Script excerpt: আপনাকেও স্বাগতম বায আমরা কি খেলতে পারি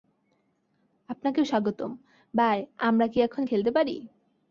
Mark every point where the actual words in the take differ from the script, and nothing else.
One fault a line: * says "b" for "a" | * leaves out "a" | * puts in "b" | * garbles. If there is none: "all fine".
* puts in "এখন"